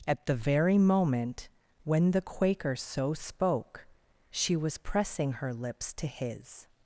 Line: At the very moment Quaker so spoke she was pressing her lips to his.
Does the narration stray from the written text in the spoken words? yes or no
yes